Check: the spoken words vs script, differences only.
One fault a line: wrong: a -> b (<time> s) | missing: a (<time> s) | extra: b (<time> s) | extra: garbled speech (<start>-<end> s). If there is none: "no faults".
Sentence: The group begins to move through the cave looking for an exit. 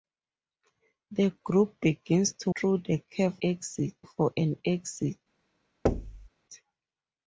missing: move (2.5 s)
wrong: looking -> exit (3.4 s)